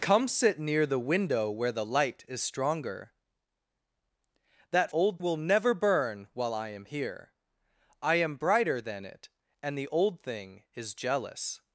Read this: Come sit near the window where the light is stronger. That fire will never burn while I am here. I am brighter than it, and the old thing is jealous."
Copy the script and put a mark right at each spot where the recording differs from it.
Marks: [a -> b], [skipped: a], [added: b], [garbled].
Come sit near the window where the light is stronger. That [fire -> old] will never burn while I am here. I am brighter than it, and the old thing is jealous."